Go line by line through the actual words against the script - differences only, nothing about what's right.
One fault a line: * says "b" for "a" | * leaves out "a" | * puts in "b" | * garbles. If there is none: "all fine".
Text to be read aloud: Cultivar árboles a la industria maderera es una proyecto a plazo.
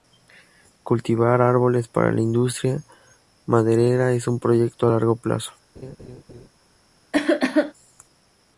* says "para" for "a"
* says "un" for "una"
* puts in "largo"